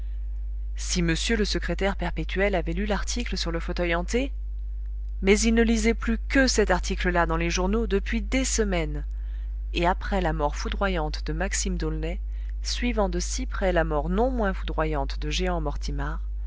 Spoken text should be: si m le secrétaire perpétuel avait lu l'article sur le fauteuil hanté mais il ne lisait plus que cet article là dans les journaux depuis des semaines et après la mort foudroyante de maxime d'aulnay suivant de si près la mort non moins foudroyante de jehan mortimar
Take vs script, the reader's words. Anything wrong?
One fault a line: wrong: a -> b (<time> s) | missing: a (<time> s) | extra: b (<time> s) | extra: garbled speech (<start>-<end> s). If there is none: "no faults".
no faults